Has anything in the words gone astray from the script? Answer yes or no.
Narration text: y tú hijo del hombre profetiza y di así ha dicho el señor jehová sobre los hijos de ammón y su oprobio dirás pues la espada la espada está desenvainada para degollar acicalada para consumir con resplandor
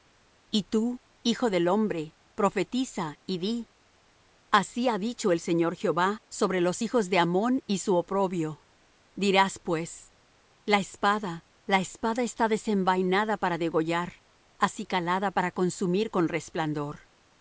no